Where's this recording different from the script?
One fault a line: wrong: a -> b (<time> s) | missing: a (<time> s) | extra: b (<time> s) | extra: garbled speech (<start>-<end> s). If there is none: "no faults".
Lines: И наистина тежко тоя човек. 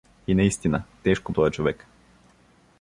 no faults